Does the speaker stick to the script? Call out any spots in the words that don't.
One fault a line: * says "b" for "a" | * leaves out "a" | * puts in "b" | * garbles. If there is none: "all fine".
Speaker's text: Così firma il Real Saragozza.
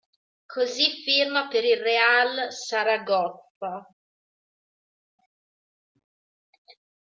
* puts in "per"